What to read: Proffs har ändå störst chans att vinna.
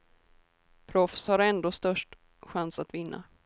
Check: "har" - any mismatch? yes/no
no